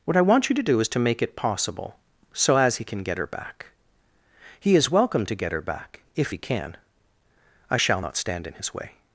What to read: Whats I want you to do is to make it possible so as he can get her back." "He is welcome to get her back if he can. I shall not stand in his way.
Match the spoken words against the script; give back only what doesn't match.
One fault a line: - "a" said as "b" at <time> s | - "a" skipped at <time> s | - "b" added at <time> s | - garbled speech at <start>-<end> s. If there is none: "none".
- "Whats" said as "What" at 0.1 s